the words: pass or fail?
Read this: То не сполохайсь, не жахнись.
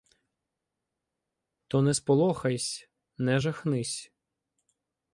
pass